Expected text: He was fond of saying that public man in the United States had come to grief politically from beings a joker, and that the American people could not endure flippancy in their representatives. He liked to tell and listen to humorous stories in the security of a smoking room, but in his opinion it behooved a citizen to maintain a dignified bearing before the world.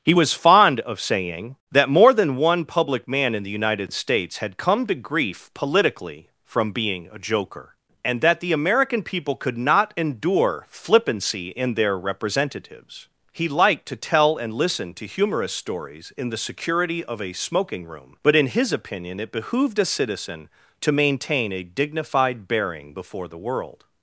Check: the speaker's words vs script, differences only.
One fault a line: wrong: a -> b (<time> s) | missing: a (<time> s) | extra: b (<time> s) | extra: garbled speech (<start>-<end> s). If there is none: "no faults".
extra: more than one (1.9 s)
wrong: beings -> being (6.7 s)